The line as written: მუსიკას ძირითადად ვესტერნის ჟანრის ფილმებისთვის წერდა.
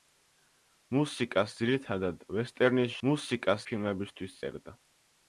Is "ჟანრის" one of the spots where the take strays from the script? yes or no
yes